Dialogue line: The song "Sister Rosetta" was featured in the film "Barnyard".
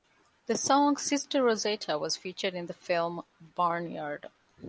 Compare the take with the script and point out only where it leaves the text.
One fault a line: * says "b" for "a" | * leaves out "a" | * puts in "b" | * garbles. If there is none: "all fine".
all fine